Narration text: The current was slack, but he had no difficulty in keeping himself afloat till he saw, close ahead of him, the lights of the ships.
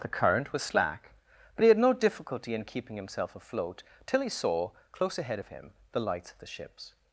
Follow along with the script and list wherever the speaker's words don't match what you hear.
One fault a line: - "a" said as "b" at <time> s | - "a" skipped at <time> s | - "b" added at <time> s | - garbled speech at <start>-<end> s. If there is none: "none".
none